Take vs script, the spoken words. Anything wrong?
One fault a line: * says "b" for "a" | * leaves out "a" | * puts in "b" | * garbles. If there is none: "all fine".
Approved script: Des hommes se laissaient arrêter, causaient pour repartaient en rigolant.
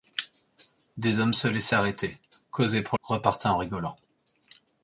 all fine